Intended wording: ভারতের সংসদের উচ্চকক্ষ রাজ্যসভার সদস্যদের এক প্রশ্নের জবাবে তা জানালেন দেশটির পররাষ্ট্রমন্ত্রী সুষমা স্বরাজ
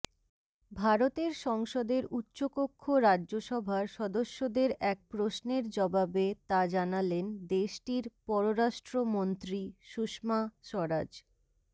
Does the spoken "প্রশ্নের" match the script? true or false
true